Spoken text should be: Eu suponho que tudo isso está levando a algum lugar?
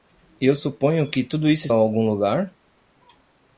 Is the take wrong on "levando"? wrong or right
wrong